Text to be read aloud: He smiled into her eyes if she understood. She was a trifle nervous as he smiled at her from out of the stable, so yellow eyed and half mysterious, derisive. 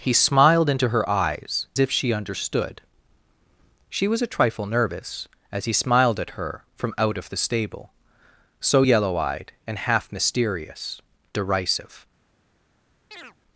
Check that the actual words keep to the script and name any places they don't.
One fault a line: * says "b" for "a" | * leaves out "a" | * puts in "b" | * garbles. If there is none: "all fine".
all fine